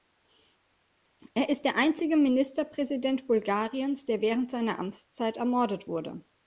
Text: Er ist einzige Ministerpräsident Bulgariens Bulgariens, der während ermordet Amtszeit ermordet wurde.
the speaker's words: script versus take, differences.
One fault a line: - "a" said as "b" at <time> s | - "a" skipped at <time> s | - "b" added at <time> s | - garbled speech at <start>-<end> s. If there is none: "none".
- "der" added at 1.6 s
- "Bulgariens" skipped at 4.0 s
- "ermordet" said as "seiner" at 4.5 s